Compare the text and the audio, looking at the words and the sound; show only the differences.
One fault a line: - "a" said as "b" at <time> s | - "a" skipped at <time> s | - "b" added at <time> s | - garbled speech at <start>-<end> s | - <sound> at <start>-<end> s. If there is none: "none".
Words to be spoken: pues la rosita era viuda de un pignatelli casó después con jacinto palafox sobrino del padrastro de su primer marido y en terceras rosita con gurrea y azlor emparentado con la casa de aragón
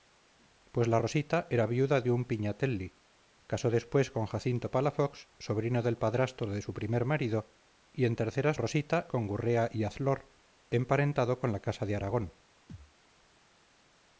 - thud at 12.7-13.0 s